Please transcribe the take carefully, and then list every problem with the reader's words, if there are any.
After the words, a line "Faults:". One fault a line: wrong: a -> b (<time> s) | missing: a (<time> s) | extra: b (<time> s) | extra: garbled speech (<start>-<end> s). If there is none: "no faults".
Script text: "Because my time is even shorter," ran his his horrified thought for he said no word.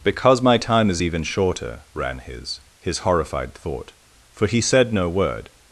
"Because my time is even shorter," ran his his horrified thought for he said no word.
Faults:
no faults